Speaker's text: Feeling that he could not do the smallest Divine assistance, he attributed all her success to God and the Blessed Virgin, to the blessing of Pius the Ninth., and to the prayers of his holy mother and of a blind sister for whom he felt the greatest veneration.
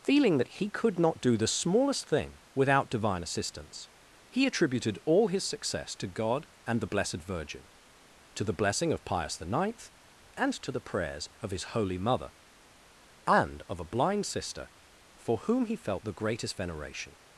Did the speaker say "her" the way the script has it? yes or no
no